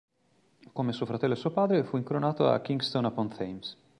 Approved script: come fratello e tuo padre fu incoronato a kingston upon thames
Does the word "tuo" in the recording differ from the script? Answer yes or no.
yes